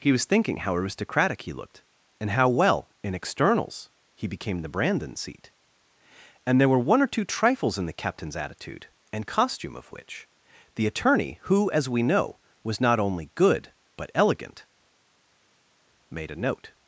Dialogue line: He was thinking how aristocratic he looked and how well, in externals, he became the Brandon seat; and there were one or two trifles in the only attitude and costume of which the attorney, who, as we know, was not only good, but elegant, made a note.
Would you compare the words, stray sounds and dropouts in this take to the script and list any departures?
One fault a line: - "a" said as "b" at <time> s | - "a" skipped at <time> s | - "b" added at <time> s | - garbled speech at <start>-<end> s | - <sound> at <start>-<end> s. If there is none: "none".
- "only" said as "captain's" at 8.0 s